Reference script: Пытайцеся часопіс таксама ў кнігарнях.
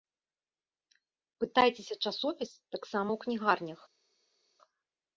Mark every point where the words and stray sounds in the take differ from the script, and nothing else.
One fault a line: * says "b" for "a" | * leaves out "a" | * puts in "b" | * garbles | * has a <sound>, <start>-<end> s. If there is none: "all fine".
all fine